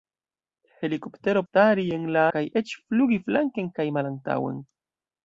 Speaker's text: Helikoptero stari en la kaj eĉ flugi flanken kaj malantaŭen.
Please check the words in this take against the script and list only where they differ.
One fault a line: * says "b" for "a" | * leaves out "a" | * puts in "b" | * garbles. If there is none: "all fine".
all fine